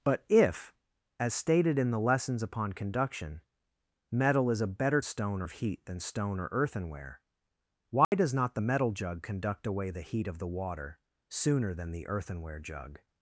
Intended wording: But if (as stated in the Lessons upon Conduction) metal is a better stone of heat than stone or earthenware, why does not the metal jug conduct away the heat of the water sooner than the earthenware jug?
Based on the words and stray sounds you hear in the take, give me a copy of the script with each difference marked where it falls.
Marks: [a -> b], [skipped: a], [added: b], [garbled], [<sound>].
But if (as stated in the Lessons upon Conduction) metal is a better stone of heat than stone or earthenware, why [dropout] does not the metal jug conduct away the heat of the water sooner than the earthenware jug?